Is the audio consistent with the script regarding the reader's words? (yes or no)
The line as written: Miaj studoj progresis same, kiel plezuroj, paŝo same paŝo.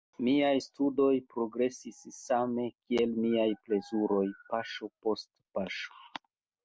no